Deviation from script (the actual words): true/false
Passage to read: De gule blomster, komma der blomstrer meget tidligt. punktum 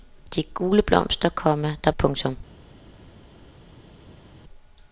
true